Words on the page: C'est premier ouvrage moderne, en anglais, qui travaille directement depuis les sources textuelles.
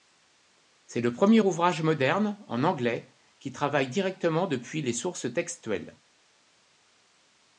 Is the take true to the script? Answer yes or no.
no